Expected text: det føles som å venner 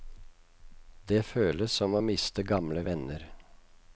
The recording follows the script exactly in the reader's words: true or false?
false